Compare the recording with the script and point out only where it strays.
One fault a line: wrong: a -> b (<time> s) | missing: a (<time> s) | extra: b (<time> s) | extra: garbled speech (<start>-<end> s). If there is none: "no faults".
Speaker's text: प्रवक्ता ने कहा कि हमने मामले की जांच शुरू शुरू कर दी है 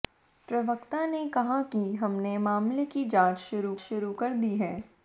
no faults